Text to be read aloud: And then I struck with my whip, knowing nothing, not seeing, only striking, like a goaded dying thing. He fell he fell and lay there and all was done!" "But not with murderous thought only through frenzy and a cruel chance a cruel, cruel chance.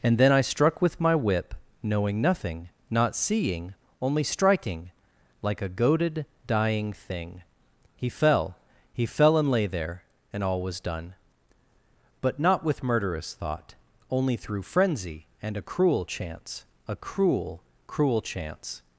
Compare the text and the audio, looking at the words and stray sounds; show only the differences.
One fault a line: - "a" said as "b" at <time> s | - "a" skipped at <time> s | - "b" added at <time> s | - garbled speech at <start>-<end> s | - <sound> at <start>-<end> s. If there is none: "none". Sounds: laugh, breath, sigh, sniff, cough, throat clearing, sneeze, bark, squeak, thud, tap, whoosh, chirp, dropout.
none